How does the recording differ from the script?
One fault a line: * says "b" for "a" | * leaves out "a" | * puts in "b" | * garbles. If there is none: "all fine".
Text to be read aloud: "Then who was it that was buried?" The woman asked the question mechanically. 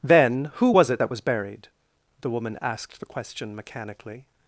all fine